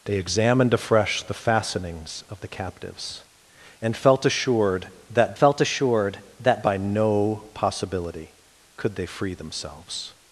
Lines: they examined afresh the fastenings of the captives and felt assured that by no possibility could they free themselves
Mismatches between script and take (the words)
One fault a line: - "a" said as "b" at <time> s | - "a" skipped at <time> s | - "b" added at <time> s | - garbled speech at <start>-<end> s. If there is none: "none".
- "felt assured that" added at 5.3 s